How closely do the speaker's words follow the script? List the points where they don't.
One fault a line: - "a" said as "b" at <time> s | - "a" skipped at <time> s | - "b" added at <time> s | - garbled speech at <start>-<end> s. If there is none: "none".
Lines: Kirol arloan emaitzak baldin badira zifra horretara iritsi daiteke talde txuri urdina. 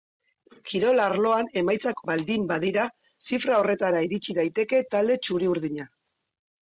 none